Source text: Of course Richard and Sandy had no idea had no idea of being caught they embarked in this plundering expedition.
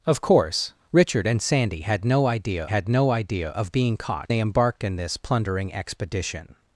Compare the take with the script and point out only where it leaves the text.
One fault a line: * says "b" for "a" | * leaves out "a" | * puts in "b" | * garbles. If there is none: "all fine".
all fine